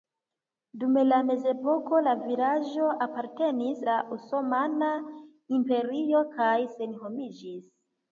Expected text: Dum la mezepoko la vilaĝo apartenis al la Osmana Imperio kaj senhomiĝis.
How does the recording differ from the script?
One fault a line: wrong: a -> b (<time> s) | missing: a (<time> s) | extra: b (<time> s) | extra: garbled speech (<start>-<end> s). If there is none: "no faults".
missing: al (3.8 s)